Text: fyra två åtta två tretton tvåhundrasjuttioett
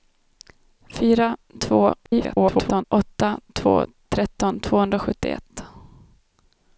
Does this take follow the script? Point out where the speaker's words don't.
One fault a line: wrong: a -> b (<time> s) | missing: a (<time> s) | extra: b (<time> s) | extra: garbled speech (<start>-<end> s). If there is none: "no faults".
extra: garbled speech (2.0-2.8 s)